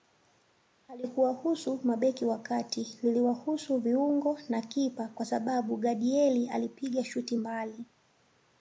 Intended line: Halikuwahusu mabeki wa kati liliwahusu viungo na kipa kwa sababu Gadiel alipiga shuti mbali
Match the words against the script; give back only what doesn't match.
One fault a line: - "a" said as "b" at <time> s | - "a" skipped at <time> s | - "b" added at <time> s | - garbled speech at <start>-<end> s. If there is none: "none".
none